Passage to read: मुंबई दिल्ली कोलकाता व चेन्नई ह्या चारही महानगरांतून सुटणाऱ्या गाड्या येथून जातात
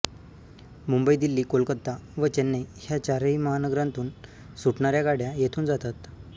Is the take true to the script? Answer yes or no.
yes